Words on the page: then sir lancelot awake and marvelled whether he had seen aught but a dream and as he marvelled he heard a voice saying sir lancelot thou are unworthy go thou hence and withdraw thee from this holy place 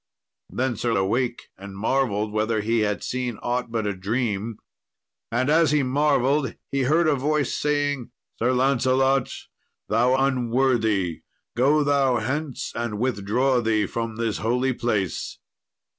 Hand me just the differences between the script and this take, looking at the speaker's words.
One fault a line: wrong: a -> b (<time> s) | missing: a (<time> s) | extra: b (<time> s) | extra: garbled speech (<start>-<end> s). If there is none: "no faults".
missing: lancelot (0.9 s)
missing: are (10.1 s)